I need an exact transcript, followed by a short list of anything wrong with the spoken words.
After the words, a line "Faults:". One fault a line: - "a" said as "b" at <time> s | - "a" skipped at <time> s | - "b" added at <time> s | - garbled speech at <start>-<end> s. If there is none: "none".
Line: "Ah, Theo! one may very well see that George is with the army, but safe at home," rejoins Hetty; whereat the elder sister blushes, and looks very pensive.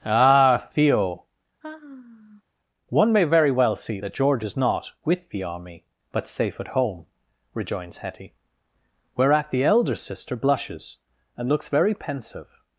"Ah, Theo! one may very well see that George is not with the army, but safe at home," rejoins Hetty; whereat the elder sister blushes, and looks very pensive.
Faults:
- "not" added at 4.6 s